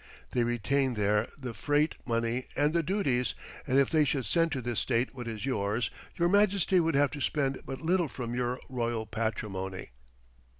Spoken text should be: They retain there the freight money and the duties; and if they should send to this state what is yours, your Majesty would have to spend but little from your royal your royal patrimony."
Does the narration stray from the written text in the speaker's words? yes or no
yes